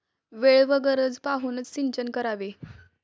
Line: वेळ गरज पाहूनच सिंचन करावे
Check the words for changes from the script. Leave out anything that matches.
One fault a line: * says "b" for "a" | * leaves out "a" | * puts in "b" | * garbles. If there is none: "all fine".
* puts in "व"